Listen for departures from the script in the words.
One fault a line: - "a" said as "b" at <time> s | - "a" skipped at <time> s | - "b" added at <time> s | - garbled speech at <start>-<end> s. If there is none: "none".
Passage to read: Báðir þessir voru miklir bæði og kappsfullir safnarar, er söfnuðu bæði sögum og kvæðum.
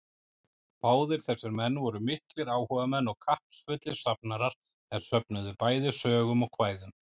- "menn" added at 1.6 s
- "bæði" said as "áhugamenn" at 2.5 s